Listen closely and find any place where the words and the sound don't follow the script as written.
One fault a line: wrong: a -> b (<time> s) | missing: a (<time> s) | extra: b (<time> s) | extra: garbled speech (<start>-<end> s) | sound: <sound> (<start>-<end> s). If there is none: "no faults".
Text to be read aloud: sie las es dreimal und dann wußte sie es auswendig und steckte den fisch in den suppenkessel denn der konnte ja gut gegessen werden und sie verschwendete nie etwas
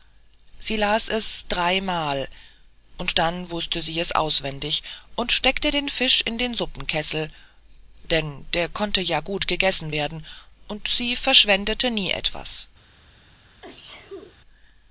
sound: sneeze (13.6-14.4 s)